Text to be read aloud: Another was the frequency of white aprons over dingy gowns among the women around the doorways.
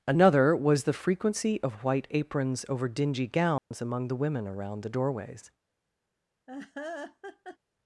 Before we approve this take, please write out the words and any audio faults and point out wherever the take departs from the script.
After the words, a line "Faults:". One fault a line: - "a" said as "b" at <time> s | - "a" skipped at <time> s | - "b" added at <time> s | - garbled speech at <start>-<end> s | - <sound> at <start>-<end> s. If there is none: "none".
Another was the frequency of white aprons over dingy gowns among the women around the doorways.
Faults:
- dropout at 3.6-3.7 s
- laugh at 6.5-7.6 s